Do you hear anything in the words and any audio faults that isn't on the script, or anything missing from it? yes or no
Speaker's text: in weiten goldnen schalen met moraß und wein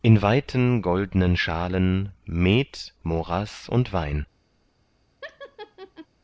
yes